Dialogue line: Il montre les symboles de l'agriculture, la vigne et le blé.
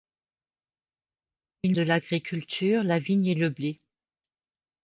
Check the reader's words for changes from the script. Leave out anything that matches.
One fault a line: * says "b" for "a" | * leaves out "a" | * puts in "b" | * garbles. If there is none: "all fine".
* leaves out "montre les symboles"